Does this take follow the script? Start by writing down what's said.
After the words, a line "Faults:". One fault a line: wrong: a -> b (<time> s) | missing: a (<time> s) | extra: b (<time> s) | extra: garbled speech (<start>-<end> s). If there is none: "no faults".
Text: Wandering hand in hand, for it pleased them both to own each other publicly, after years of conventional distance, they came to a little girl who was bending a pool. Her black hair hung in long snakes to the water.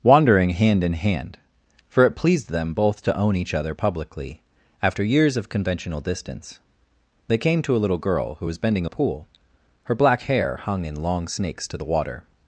Wandering hand in hand, for it pleased them both to own each other publicly, after years of conventional distance, they came to a little girl who was bending a pool. Her black hair hung in long snakes to the water.
Faults:
no faults